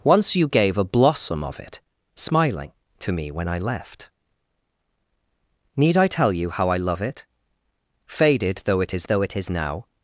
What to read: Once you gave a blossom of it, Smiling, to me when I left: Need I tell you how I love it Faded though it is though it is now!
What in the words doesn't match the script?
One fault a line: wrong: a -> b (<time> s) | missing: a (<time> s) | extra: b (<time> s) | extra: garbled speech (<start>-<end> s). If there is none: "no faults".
no faults